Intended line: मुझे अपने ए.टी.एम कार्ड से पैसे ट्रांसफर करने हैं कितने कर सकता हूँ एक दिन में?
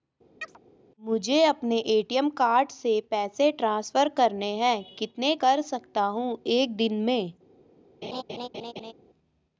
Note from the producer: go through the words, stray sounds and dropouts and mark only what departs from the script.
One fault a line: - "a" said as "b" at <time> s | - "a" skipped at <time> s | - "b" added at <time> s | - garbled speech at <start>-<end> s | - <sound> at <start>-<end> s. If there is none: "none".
- chirp at 0.4-0.6 s
- laugh at 8.0-8.9 s